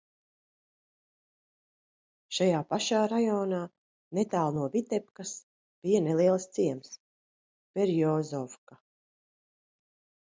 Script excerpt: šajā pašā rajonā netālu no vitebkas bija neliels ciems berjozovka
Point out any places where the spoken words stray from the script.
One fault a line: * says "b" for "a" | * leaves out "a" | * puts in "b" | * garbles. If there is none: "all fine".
all fine